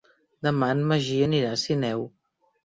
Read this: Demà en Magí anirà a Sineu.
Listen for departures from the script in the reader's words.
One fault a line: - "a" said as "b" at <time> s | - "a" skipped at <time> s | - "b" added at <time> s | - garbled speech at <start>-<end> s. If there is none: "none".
none